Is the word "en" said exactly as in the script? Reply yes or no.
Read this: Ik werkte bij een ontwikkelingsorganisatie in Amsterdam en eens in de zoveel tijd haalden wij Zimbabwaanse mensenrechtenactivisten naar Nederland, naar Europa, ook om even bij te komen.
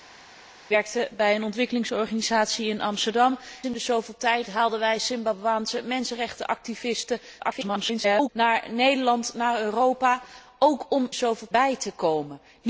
no